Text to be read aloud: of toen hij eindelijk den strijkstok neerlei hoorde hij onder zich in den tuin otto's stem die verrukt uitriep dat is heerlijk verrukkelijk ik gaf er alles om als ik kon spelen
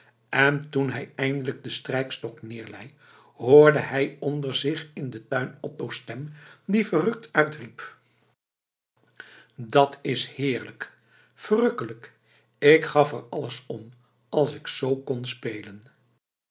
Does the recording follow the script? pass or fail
fail